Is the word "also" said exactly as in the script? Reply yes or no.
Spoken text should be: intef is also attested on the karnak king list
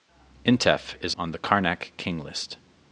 no